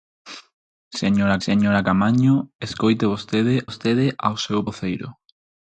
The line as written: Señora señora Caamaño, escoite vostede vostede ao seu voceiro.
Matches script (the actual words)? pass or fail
pass